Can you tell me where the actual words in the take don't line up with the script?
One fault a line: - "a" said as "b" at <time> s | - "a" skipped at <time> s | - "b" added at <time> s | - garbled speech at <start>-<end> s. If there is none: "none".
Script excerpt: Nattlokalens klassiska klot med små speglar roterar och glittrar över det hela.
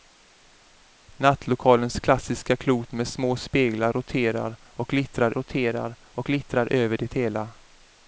- "roterar och glittrar" added at 5.3 s